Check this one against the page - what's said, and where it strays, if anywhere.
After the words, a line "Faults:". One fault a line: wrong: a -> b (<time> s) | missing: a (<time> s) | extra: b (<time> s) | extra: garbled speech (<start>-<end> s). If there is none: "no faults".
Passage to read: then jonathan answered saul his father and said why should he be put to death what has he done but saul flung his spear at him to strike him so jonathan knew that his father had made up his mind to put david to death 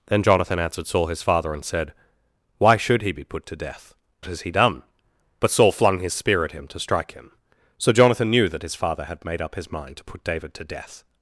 then jonathan answered saul his father and said why should he be put to death has he done but saul flung his spear at him to strike him so jonathan knew that his father had made up his mind to put david to death
Faults:
missing: what (3.9 s)